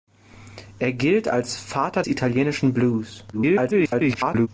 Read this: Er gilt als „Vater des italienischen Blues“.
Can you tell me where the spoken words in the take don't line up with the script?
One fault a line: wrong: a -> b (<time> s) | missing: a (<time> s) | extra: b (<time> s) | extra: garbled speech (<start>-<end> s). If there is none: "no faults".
missing: des (2.0 s)
extra: garbled speech (3.3-4.5 s)